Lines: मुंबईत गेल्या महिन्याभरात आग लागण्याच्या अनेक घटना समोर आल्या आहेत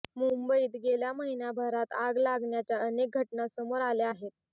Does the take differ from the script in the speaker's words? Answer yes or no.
no